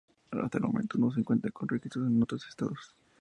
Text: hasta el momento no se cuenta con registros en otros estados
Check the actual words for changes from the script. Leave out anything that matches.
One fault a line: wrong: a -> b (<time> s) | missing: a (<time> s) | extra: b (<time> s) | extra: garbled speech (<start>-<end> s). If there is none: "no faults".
no faults